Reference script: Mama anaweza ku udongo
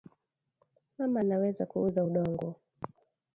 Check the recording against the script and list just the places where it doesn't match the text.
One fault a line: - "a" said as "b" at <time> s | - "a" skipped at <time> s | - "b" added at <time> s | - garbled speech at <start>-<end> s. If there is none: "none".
- "uza" added at 1.9 s